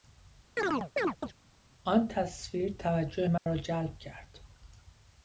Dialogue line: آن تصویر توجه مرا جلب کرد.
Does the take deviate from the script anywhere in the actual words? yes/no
no